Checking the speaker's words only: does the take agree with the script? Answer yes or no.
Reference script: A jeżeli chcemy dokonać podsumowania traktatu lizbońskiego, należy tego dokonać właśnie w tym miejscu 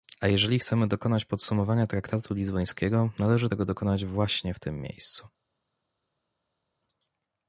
yes